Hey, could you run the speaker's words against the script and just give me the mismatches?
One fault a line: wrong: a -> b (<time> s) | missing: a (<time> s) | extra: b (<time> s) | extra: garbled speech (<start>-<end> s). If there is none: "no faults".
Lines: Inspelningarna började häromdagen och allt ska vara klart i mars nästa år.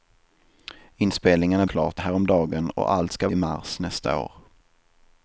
wrong: började -> klart (1.7 s)
missing: vara klart (3.3 s)